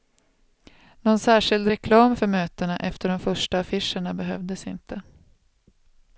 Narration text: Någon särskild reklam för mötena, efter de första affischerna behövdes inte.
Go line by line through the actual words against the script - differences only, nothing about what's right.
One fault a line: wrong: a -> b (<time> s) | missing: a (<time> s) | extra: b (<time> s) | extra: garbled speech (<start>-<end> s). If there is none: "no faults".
no faults